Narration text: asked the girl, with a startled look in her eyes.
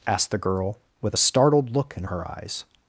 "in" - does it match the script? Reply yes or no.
yes